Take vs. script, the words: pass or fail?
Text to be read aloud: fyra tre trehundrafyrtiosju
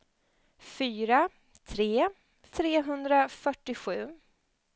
pass